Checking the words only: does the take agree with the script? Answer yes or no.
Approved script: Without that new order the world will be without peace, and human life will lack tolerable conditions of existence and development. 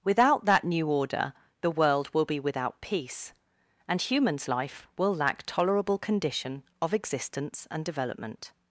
no